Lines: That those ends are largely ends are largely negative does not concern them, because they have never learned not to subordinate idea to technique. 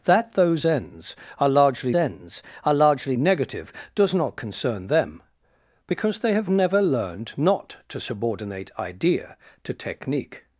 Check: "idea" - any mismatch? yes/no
no